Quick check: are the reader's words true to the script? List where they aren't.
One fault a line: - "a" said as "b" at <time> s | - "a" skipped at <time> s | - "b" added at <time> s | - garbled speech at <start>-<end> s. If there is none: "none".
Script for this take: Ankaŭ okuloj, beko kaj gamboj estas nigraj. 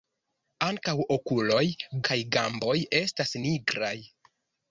- "beko" skipped at 1.6 s